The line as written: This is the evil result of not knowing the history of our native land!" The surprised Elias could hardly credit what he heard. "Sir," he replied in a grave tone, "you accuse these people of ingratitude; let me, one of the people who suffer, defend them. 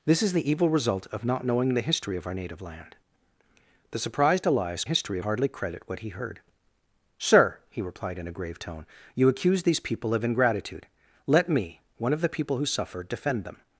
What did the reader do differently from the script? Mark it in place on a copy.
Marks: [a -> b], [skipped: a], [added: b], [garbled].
This is the evil result of not knowing the history of our native land!" The surprised Elias [could -> history] hardly credit what he heard. "Sir," he replied in a grave tone, "you accuse these people of ingratitude; let me, one of the people who suffer, defend them.